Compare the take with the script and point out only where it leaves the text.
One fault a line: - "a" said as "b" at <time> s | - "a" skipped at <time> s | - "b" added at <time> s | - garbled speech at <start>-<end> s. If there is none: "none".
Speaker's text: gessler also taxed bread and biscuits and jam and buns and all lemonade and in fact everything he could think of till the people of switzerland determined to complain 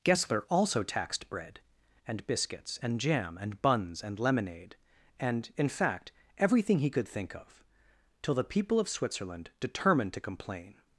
- "all" skipped at 4.2 s